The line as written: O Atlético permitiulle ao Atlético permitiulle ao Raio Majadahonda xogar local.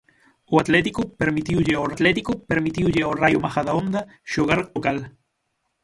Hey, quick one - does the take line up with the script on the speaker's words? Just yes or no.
yes